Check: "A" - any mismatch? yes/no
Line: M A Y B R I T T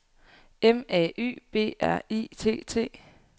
no